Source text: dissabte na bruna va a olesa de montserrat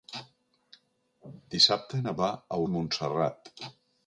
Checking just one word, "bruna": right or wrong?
wrong